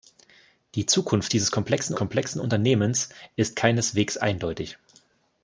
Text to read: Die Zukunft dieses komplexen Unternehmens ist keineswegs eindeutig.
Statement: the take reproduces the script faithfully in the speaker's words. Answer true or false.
false